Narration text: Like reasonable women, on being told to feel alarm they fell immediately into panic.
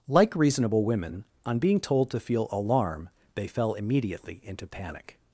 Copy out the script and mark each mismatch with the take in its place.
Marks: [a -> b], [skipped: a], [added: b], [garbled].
Like reasonable women, on being told to feel alarm they fell immediately into panic.